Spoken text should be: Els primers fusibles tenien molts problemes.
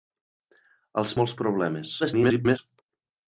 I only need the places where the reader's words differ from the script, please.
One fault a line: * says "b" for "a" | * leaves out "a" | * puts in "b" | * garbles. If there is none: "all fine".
* leaves out "primers fusibles tenien"
* garbles